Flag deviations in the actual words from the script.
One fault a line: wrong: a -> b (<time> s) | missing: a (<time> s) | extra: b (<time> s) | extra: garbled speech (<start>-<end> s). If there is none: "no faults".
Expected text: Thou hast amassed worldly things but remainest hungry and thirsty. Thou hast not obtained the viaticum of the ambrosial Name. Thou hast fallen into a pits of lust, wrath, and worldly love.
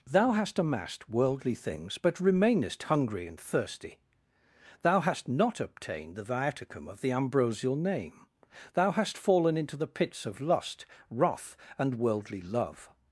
wrong: a -> the (9.8 s)